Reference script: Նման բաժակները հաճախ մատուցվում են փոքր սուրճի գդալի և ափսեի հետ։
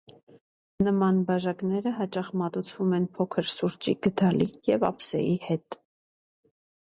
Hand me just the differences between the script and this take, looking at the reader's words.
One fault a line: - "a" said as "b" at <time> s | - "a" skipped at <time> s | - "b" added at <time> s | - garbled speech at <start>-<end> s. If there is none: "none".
none